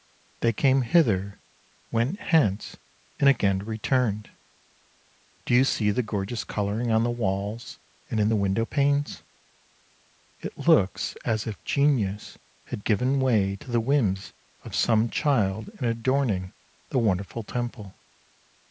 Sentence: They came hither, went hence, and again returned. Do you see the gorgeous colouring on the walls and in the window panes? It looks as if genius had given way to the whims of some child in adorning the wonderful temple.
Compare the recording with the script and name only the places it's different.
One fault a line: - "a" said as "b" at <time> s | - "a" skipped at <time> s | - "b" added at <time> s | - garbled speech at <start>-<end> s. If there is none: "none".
none